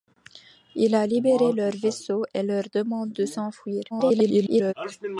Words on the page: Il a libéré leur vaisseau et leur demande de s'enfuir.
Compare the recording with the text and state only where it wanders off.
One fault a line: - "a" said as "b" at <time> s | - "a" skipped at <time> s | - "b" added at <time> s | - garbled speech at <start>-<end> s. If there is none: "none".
- garbled speech at 3.9-4.7 s